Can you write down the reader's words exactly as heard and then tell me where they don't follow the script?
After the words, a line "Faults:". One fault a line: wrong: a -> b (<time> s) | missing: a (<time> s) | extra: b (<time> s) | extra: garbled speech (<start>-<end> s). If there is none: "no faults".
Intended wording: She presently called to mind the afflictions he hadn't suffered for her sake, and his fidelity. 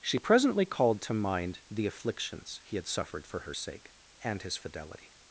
She presently called to mind the afflictions he had suffered for her sake, and his fidelity.
Faults:
wrong: hadn't -> had (2.8 s)